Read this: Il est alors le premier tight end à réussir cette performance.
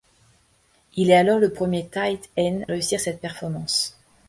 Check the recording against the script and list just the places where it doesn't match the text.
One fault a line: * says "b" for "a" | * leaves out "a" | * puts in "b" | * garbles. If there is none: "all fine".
* leaves out "à"